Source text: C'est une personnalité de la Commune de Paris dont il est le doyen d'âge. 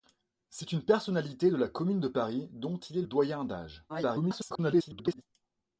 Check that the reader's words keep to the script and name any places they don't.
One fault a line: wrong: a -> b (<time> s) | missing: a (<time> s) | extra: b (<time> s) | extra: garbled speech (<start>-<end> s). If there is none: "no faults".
missing: le (3.0 s)
extra: garbled speech (3.9-5.2 s)